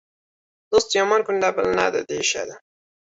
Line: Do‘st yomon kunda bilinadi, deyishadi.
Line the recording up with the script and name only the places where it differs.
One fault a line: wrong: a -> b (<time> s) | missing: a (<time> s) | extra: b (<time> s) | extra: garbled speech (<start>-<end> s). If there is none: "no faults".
no faults